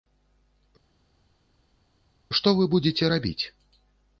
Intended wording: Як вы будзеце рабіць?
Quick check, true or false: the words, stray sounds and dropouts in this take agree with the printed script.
false